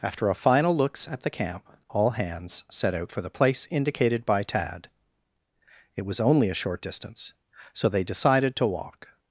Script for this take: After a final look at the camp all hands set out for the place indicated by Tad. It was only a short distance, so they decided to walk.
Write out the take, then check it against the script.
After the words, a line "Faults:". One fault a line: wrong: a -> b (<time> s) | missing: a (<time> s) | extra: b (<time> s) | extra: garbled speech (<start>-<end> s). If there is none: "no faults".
After a final looks at the camp all hands set out for the place indicated by Tad. It was only a short distance, so they decided to walk.
Faults:
wrong: look -> looks (0.8 s)